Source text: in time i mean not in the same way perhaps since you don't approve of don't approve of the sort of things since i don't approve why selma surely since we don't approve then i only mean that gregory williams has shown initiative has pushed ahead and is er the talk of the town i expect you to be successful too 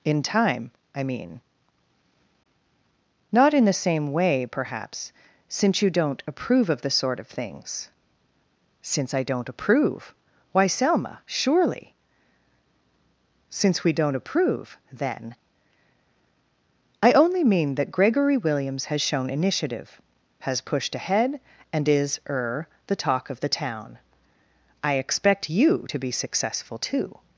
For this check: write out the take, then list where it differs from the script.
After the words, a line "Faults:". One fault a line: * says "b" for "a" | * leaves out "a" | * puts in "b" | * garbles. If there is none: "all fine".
in time i mean not in the same way perhaps since you don't approve of the sort of things since i don't approve why selma surely since we don't approve then i only mean that gregory williams has shown initiative has pushed ahead and is er the talk of the town i expect you to be successful too
Faults:
* leaves out "don't approve of"